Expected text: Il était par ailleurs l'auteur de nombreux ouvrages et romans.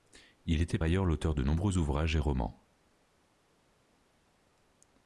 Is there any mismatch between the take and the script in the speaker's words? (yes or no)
yes